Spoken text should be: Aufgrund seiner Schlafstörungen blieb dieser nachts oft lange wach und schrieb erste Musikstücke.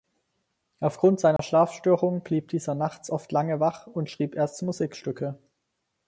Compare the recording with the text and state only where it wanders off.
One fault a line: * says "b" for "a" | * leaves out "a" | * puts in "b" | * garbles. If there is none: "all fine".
all fine